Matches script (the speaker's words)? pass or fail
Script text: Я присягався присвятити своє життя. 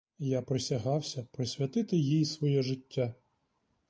fail